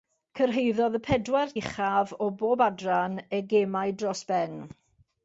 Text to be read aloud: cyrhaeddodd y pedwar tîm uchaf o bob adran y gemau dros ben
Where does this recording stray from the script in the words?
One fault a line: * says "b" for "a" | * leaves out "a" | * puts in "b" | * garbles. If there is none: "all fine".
* leaves out "tîm"